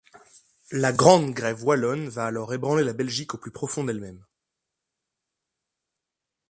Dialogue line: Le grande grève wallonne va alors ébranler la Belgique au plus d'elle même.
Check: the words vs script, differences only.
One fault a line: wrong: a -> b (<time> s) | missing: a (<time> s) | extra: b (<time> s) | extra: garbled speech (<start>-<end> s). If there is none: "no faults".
wrong: Le -> La (0.7 s)
extra: profond (3.5 s)